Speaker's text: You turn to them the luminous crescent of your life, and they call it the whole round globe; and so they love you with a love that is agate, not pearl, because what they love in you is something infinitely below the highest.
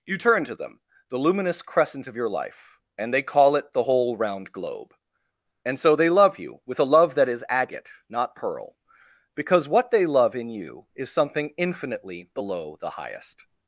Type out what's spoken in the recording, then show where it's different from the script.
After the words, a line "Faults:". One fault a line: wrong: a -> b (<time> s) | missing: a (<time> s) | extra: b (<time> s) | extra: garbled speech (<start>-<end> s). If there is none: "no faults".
You turn to them the luminous crescent of your life, and they call it the whole round globe; and so they love you with a love that is agate, not pearl, because what they love in you is something infinitely below the highest.
Faults:
no faults